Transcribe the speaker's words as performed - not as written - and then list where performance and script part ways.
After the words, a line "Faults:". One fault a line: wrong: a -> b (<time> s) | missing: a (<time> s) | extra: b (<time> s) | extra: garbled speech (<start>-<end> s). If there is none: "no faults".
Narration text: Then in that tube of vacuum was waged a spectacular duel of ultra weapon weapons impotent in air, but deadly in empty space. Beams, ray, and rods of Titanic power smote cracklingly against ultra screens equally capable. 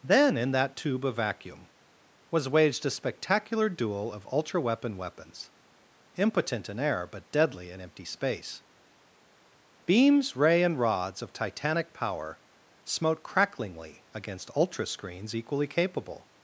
Then in that tube of vacuum was waged a spectacular duel of ultra weapon weapons impotent in air, but deadly in empty space. Beams, ray, and rods of Titanic power smote cracklingly against ultra screens equally capable.
Faults:
no faults